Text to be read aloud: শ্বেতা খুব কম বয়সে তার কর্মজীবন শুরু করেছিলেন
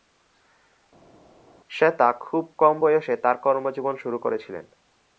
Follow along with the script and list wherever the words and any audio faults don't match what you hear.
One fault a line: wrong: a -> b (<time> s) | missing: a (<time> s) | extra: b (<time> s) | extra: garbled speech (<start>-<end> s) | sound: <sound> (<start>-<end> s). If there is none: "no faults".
no faults